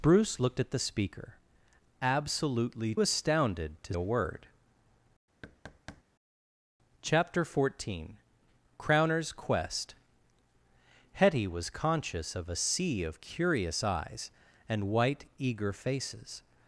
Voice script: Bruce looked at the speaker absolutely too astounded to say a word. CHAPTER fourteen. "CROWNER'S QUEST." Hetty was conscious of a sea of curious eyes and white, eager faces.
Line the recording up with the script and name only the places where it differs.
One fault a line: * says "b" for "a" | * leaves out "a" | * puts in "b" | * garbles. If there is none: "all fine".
* leaves out "too"
* leaves out "say"